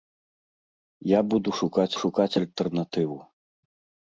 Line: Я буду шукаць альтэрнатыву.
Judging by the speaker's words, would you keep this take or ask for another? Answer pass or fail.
fail